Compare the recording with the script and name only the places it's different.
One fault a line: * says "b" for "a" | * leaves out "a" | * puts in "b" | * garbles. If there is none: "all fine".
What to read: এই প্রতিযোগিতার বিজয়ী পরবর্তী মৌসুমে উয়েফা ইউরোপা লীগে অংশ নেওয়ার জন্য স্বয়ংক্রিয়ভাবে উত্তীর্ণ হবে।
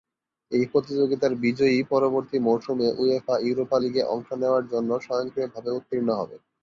all fine